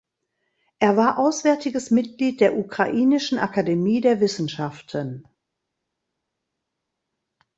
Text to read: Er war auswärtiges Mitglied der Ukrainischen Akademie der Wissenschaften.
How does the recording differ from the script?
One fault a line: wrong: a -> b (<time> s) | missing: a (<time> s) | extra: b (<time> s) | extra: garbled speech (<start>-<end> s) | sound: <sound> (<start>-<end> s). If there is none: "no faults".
no faults